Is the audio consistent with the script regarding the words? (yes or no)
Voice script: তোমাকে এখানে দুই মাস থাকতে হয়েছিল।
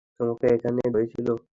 no